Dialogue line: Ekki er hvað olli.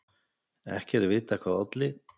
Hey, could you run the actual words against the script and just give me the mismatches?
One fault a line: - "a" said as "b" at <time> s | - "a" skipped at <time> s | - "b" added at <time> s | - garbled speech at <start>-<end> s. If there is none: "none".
- "vitað" added at 1.1 s